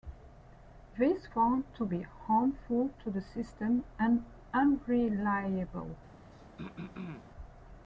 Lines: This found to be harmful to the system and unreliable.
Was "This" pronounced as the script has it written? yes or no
yes